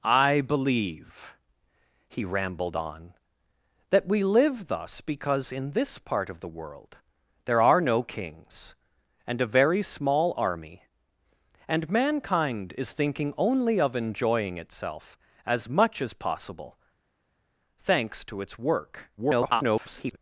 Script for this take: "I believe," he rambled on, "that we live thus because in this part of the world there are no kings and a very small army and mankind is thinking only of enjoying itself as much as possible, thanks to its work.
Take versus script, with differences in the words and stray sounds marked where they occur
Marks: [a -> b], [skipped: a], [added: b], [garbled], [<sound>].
"I believe," he rambled on, "that we live thus because in this part of the world there are no kings and a very small army and mankind is thinking only of enjoying itself as much as possible, thanks to its work. [garbled]